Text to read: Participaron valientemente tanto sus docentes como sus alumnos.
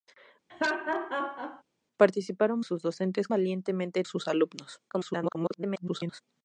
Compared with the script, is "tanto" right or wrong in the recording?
wrong